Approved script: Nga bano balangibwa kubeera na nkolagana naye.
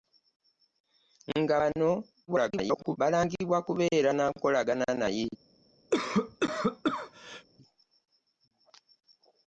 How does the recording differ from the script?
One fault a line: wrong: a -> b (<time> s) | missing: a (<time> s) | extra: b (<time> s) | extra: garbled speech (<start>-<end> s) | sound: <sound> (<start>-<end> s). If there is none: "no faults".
extra: garbled speech (2.3-3.0 s)
sound: cough (5.9-7.5 s)